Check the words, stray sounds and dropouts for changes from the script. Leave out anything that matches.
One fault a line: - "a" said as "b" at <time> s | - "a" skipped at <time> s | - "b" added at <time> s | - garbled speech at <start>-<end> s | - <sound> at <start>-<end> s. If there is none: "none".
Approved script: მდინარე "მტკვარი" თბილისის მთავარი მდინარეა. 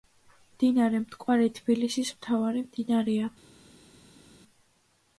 none